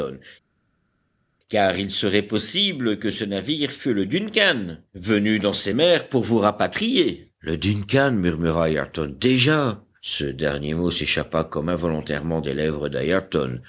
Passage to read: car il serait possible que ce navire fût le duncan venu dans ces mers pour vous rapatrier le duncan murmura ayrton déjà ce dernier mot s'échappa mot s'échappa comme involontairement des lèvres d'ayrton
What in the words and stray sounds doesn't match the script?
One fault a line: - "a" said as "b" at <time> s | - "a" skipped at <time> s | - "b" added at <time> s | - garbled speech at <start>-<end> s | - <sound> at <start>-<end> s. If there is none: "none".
- "mot s'échappa" skipped at 11.4 s